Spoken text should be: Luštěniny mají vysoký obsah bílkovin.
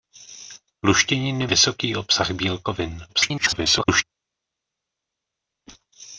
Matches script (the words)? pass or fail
fail